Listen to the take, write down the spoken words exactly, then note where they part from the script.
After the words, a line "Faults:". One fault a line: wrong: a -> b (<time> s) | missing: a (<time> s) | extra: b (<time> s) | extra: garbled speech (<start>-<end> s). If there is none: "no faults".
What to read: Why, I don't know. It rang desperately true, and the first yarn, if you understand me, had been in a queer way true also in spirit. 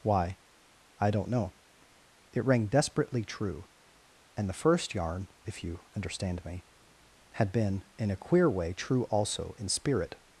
Why, I don't know. It rang desperately true, and the first yarn, if you understand me, had been in a queer way true also in spirit.
Faults:
no faults